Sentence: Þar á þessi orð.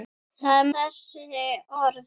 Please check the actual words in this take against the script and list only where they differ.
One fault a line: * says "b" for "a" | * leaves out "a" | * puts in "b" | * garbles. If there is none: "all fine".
all fine